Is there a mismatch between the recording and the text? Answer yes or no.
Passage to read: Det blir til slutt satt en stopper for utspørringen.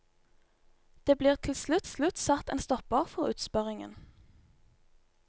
yes